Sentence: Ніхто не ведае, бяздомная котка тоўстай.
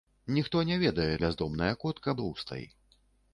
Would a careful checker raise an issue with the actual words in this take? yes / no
no